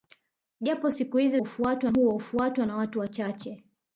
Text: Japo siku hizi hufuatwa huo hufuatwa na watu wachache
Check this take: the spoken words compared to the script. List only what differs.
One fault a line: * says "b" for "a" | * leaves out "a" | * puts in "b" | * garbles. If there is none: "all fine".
all fine